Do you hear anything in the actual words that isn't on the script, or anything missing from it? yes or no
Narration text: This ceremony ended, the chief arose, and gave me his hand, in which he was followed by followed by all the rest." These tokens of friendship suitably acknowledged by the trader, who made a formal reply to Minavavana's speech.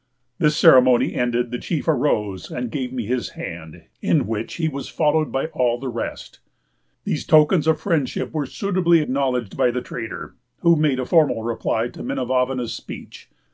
yes